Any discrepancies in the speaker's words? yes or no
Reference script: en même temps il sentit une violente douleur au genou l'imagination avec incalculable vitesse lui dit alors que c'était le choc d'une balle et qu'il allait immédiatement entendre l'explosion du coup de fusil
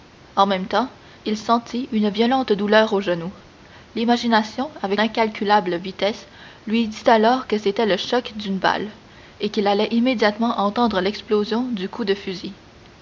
no